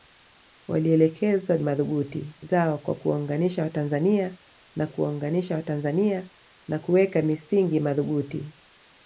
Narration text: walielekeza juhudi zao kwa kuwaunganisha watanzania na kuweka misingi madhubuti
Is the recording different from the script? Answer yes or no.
yes